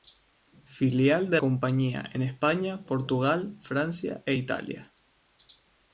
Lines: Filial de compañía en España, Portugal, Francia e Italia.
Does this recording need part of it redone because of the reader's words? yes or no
no